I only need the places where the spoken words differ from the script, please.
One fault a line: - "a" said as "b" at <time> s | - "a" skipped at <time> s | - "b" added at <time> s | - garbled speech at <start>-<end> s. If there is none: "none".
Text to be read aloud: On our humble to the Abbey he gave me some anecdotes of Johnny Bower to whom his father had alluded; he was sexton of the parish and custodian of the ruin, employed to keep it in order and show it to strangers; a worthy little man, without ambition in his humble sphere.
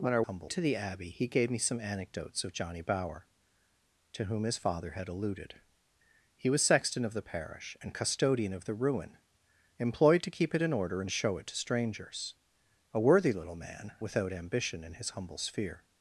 none